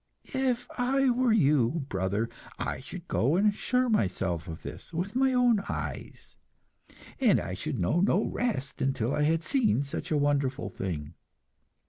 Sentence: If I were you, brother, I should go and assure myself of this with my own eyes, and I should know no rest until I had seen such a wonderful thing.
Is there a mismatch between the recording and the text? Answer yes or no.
no